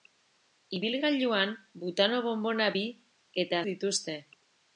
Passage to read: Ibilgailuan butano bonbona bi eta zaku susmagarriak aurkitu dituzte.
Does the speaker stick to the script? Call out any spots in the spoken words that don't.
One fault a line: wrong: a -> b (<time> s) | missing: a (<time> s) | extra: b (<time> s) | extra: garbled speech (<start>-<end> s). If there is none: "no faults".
missing: zaku susmagarriak aurkitu (3.6 s)